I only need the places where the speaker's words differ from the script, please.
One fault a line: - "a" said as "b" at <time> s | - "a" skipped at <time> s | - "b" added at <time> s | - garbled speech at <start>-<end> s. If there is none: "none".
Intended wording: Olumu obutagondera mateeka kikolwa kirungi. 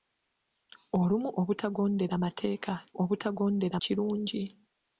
- "kikolwa" said as "obutagondera" at 3.0 s